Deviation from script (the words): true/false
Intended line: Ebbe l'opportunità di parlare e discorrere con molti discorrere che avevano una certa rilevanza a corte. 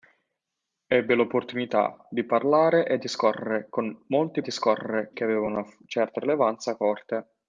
false